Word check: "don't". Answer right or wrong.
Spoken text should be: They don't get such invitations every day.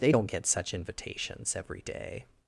right